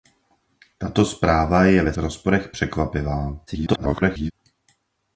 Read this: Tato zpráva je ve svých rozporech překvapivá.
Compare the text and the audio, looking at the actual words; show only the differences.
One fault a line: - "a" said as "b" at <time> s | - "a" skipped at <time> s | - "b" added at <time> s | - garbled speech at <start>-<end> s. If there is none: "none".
- "svých" skipped at 1.9 s
- garbled speech at 3.5-4.3 s